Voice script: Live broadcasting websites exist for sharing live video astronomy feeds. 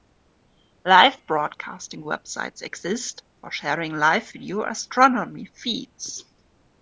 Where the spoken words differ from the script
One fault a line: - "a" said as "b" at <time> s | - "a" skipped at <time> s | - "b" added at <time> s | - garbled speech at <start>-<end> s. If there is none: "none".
none